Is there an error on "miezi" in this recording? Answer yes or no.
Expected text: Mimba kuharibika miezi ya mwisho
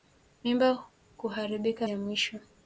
yes